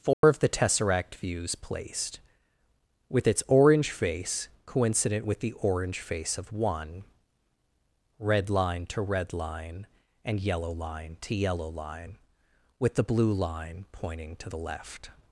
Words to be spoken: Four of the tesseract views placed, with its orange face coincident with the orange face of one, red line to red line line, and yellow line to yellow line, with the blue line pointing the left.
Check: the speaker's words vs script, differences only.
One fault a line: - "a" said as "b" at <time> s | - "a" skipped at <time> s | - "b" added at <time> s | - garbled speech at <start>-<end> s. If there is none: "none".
- "line" skipped at 9.9 s
- "to" added at 14.4 s